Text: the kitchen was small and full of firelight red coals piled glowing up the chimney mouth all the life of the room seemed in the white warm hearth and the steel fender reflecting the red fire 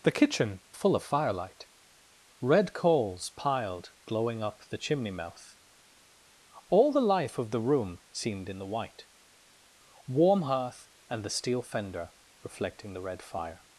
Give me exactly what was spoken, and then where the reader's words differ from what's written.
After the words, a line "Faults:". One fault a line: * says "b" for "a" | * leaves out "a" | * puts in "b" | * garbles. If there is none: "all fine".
the kitchen full of firelight red coals piled glowing up the chimney mouth all the life of the room seemed in the white warm hearth and the steel fender reflecting the red fire
Faults:
* leaves out "was small and"